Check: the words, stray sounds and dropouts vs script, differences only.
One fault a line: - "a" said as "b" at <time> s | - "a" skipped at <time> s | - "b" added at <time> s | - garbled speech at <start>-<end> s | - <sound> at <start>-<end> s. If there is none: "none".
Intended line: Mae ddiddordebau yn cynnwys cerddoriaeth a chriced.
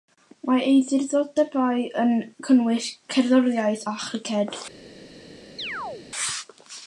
- "ei" added at 0.7 s
- chirp at 5.6-6.1 s